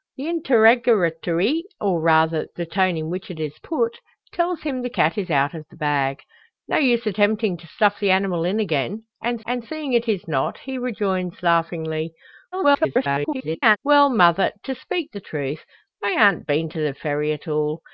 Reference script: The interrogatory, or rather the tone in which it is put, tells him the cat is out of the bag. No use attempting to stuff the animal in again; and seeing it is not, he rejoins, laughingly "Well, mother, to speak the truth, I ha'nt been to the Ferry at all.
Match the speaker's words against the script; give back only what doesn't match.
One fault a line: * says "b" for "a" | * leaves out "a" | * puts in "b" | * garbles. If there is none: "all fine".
* puts in "and"
* garbles